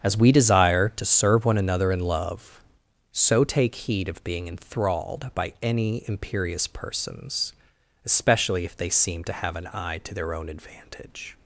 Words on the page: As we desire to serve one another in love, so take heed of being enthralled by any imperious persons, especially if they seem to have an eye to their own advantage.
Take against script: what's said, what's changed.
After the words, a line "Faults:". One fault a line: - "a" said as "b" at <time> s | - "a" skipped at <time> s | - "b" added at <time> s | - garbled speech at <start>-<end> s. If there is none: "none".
As we desire to serve one another in love, so take heed of being enthralled by any imperious persons, especially if they seem to have an eye to their own advantage.
Faults:
none